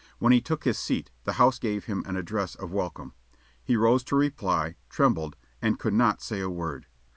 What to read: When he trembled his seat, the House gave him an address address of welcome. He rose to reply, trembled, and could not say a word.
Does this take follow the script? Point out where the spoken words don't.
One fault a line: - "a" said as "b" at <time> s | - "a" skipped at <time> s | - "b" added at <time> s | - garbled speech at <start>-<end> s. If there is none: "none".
- "trembled" said as "took" at 0.4 s
- "address" skipped at 2.6 s